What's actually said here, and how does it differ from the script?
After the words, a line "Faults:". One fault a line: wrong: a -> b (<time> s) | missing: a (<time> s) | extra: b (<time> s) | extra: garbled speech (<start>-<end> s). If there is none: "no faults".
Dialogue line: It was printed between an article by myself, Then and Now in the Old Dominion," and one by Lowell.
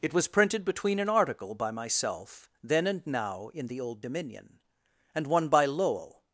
It was printed between an article by myself, Then and Now in the Old Dominion," and one by Lowell.
Faults:
no faults